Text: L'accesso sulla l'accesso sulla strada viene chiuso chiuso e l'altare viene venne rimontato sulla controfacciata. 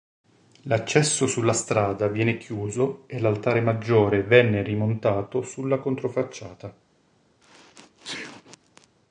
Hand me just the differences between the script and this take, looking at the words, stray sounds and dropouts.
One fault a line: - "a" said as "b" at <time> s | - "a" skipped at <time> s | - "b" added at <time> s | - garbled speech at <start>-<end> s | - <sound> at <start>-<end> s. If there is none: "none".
- "l'accesso sulla" skipped at 1.5 s
- "chiuso" skipped at 3.0 s
- "viene" said as "maggiore" at 3.6 s
- sneeze at 7.4-8.9 s